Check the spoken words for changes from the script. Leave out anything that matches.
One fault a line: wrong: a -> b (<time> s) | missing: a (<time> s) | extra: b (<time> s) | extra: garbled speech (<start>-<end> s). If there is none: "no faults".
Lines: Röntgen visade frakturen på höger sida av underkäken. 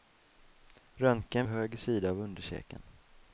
missing: visade frakturen på (1.4 s)